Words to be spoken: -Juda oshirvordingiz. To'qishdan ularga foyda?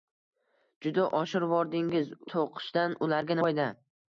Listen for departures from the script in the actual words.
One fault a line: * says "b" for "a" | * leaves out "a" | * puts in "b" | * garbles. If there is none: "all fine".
all fine